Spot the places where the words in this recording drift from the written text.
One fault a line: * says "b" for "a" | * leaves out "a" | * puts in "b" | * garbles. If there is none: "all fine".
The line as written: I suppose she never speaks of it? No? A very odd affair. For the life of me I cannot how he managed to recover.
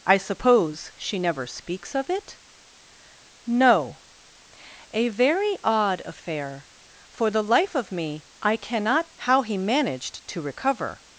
all fine